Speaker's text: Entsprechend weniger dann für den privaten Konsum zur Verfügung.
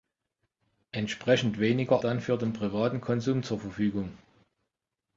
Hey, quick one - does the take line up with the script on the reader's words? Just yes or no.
yes